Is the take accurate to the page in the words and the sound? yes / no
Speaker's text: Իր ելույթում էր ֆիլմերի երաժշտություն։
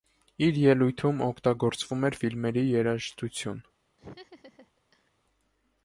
no